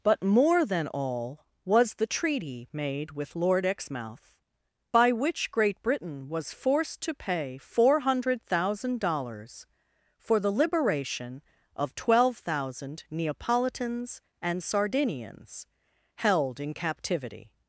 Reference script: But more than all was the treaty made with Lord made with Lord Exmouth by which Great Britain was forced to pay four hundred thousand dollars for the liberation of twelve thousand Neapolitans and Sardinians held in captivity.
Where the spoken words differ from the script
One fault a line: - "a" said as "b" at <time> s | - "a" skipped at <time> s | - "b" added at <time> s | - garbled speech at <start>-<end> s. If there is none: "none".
- "made with Lord" skipped at 3.6 s